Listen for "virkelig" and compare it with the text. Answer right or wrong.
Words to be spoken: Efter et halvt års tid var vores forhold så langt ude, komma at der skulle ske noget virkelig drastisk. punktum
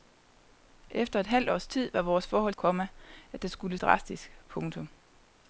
wrong